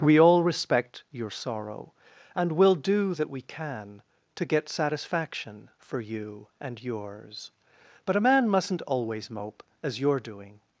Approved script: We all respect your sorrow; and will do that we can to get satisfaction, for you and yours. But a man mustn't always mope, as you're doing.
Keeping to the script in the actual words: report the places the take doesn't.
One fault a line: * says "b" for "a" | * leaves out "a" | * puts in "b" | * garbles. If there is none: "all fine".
all fine